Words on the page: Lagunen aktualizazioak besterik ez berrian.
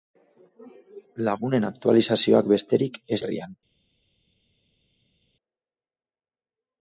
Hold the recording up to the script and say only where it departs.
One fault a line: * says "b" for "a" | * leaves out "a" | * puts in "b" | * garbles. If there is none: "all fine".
all fine